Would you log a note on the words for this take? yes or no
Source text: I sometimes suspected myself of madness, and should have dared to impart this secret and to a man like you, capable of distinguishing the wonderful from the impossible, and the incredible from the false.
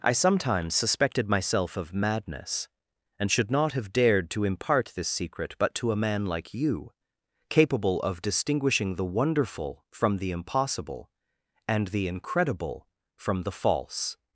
yes